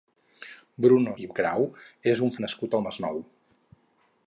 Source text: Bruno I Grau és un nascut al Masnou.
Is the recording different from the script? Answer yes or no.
no